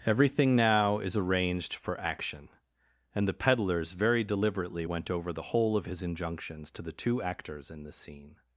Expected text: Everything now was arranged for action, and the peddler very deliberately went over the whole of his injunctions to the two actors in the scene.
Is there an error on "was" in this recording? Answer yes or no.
yes